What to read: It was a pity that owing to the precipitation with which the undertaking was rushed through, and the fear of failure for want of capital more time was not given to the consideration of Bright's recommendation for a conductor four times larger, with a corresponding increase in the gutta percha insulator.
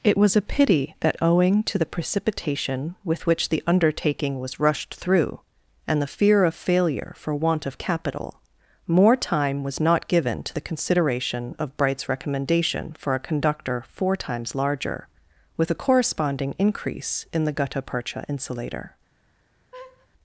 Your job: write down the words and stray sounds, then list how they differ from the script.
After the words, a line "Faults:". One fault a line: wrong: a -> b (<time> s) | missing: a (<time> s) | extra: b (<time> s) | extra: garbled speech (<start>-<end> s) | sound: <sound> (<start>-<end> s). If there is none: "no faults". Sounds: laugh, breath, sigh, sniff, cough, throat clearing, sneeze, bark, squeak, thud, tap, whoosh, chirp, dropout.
It was a pity that owing to the precipitation with which the undertaking was rushed through, and the fear of failure for want of capital more time was not given to the consideration of Bright's recommendation for a conductor four times larger, with a corresponding increase in the gutta percha insulator.
Faults:
sound: laugh (19.7-20.1 s)